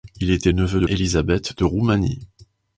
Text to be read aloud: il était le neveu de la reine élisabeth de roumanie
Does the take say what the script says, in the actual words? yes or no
no